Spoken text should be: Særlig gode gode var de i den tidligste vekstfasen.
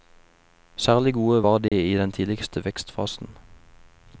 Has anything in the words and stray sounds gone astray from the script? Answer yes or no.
yes